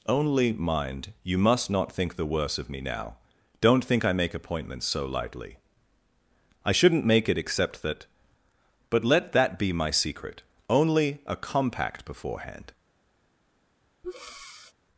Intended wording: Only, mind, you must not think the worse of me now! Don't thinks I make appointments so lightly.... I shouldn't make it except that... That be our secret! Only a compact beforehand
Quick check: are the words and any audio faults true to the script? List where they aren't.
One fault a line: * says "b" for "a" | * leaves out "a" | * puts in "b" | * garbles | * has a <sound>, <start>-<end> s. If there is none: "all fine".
* says "think" for "thinks"
* puts in "But let"
* says "my" for "our"
* has a breath, 14.0-14.7 s